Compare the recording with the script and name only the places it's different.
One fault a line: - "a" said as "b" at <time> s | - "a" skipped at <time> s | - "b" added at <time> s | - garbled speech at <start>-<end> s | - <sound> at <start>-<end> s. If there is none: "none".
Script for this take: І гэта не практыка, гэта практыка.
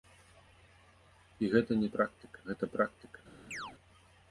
- chirp at 3.5-3.7 s